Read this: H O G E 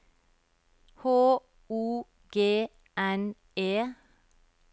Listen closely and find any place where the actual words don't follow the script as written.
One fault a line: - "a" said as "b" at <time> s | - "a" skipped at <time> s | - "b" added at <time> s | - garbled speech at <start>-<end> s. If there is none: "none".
- "N" added at 3.0 s